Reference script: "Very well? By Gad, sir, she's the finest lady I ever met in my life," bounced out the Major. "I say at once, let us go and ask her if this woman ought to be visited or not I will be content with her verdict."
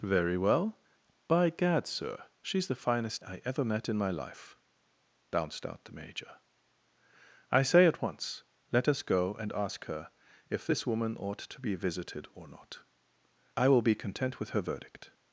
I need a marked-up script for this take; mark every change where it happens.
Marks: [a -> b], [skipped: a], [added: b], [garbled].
"Very well? By Gad, sir, she's the finest [skipped: lady] I ever met in my life," bounced out the Major. "I say at once, let us go and ask her if this woman ought to be visited or not I will be content with her verdict."